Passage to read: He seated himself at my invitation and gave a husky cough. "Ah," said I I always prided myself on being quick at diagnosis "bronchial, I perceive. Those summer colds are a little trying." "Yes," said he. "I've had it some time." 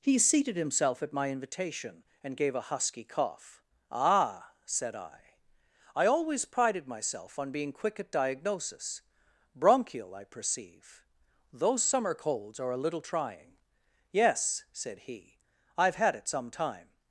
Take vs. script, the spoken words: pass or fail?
pass